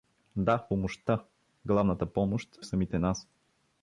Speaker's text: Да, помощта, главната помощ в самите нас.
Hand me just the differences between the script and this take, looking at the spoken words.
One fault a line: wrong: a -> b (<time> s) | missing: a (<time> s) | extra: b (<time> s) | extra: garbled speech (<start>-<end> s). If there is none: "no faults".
no faults